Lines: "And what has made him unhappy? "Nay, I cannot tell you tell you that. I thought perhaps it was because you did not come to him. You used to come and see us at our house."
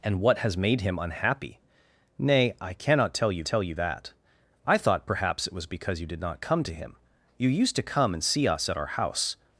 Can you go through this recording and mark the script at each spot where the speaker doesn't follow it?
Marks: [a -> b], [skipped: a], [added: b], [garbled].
"And what has made him unhappy? "Nay, I cannot tell you tell you that. I thought perhaps it was because you did not come to him. You used to come and see us at our house."